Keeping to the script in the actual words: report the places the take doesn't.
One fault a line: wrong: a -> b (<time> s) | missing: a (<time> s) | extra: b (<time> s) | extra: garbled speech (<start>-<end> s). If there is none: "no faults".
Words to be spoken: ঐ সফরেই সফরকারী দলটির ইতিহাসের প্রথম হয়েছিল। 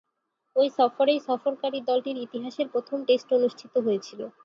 extra: টেস্ট অনুষ্ঠিত (3.1 s)